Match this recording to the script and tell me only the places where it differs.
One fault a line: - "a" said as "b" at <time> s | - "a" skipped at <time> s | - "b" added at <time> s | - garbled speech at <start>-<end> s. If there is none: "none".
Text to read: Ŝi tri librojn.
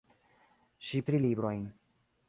none